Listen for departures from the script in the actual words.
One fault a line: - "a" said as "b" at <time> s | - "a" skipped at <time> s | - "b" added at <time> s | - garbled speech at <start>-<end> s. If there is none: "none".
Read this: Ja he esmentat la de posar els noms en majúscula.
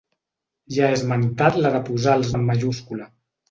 - "noms" skipped at 2.3 s